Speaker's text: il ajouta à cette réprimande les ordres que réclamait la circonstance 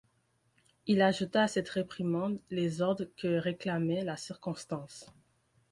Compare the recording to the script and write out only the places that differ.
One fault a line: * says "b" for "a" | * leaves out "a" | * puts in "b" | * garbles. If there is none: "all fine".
all fine